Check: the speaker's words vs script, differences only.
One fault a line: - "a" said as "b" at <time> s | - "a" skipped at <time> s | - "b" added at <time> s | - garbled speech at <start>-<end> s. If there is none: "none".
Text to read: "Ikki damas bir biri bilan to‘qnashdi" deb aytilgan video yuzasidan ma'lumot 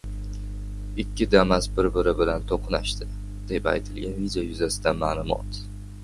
none